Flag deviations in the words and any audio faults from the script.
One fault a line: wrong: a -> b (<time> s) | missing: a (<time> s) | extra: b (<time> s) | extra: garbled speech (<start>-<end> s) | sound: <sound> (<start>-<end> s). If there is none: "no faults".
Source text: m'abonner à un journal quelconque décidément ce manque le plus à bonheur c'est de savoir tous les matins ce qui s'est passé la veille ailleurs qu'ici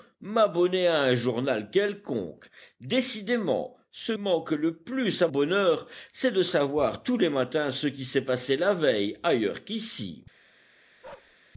sound: bark (11.0-11.4 s)